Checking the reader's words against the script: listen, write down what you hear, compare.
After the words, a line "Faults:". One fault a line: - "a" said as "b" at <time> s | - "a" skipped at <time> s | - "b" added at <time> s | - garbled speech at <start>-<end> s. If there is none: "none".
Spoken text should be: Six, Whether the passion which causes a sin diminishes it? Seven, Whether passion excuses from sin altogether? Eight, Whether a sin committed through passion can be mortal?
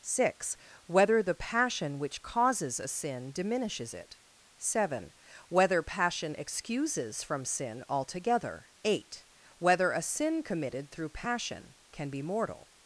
Six, Whether the passion which causes a sin diminishes it? Seven, Whether passion excuses from sin altogether? Eight, Whether a sin committed through passion can be mortal?
Faults:
none